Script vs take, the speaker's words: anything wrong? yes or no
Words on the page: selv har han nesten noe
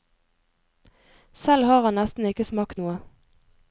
yes